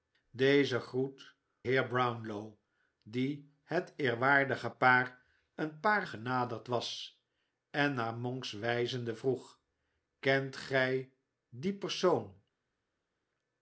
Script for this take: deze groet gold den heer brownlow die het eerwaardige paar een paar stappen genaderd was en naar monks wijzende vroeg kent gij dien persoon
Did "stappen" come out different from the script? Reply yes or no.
yes